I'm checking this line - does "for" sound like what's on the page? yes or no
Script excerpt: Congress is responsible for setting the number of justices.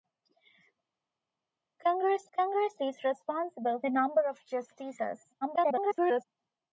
no